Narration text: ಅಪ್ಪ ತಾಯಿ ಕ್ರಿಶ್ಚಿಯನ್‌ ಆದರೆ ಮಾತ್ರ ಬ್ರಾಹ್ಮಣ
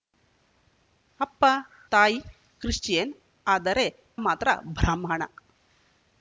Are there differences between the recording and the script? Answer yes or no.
no